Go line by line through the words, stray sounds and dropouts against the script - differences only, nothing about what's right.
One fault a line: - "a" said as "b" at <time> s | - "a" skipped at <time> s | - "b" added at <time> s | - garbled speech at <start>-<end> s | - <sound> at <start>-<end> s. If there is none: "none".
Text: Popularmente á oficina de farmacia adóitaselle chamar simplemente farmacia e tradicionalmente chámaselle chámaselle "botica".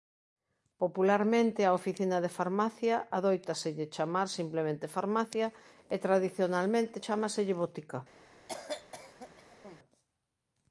- "chámaselle" skipped at 7.5 s
- cough at 8.5-9.8 s